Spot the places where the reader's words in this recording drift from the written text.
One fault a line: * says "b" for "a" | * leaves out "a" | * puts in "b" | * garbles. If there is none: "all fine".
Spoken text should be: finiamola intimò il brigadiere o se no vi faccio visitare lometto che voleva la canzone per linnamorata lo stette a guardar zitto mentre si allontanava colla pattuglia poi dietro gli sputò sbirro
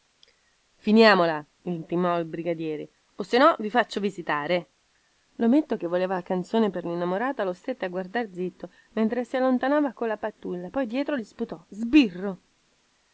all fine